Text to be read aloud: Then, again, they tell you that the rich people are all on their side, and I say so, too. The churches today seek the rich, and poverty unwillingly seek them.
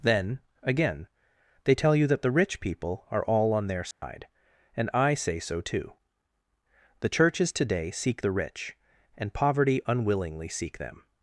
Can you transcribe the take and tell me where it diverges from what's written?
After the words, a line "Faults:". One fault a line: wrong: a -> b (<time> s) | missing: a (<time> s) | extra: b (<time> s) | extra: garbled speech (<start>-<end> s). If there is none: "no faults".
Then, again, they tell you that the rich people are all on their side, and I say so, too. The churches today seek the rich, and poverty unwillingly seek them.
Faults:
no faults